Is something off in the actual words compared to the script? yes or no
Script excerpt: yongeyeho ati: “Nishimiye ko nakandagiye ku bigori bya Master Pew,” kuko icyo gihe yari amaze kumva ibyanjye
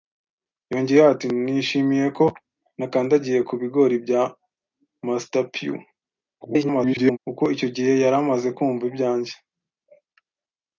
yes